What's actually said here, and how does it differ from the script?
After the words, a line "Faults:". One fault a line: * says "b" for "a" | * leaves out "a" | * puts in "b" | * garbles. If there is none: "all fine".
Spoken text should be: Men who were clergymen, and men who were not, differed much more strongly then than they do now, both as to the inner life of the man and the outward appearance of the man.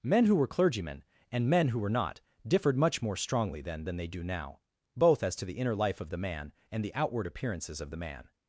Men who were clergymen, and men who were not, differed much more strongly then than they do now, both as to the inner life of the man and the outward appearances of the man.
Faults:
* says "appearances" for "appearance"